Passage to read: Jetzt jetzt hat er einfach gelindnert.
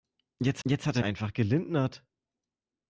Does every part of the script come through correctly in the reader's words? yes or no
yes